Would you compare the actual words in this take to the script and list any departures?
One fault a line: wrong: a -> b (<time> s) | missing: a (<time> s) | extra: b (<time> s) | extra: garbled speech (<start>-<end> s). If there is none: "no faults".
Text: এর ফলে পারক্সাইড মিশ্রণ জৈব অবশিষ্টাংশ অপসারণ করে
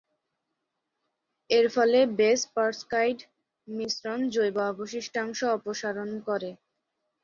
extra: বেস (2.2 s)